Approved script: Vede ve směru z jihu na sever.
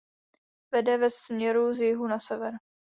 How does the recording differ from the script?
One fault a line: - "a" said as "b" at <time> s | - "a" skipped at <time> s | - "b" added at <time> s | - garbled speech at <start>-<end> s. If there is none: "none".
none